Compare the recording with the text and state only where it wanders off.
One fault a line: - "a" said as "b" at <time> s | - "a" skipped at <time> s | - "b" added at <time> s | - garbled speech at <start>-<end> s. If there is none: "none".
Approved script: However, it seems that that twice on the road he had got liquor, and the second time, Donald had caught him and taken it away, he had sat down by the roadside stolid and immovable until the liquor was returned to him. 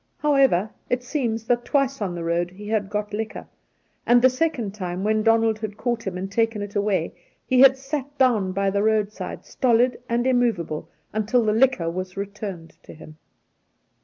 - "that" skipped at 1.6 s
- "when" added at 5.0 s